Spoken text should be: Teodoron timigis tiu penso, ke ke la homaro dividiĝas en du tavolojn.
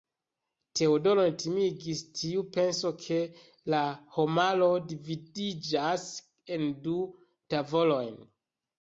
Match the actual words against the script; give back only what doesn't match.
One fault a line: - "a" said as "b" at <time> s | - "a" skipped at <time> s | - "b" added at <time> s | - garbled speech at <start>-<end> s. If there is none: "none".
- "ke" skipped at 3.2 s